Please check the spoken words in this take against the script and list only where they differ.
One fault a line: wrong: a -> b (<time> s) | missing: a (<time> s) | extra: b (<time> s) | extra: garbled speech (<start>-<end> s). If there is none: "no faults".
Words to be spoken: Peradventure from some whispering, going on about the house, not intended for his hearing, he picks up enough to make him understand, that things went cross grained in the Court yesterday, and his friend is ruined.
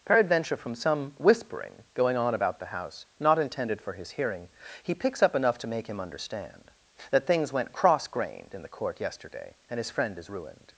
no faults